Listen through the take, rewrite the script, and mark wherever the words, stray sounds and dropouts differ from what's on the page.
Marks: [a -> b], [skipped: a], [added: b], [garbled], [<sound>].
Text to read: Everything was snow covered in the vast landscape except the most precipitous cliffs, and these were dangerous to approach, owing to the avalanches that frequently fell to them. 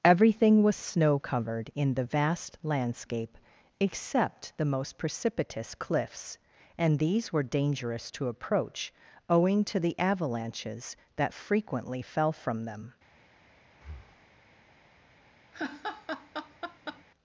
Everything was snow covered in the vast landscape except the most precipitous cliffs, and these were dangerous to approach, owing to the avalanches that frequently fell [to -> from] them. [breath] [laugh]